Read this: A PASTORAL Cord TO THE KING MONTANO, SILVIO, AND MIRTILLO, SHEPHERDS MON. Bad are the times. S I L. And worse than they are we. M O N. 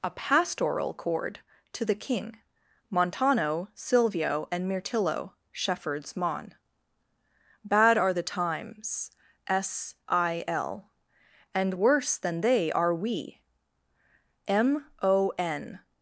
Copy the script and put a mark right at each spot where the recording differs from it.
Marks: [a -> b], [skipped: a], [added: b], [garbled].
A PASTORAL Cord TO THE KING MONTANO, SILVIO, AND MIRTILLO, SHEPHERDS MON. Bad are the times. S I L. And worse than they are we. M O N.